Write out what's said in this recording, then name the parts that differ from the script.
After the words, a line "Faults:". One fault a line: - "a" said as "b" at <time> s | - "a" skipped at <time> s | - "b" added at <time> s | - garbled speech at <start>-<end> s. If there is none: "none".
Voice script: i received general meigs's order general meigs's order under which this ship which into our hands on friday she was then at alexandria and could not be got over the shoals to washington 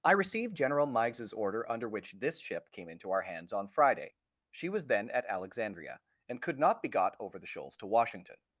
i received general meigs's order under which this ship came into our hands on friday she was then at alexandria and could not be got over the shoals to washington
Faults:
- "general meigs's order" skipped at 1.7 s
- "which" said as "came" at 2.7 s